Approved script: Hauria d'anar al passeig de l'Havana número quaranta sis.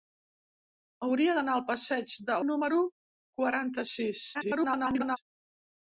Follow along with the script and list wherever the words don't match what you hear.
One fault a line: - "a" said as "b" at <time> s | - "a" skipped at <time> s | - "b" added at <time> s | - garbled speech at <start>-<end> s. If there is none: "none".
- "l'Havana" skipped at 2.4 s
- garbled speech at 4.3-5.2 s